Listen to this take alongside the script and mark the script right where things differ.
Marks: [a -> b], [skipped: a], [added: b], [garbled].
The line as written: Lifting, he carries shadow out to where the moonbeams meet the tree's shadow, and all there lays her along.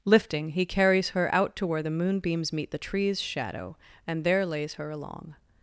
Lifting, he carries [shadow -> her] out to where the moonbeams meet the tree's shadow, and [skipped: all] there lays her along.